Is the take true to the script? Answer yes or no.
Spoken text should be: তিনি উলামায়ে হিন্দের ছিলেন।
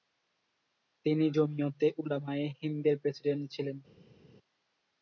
no